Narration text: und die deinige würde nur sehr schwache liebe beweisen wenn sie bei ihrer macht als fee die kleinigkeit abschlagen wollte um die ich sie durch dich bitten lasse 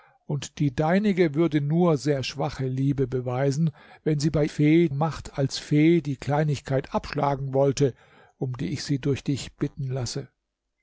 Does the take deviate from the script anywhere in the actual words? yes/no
yes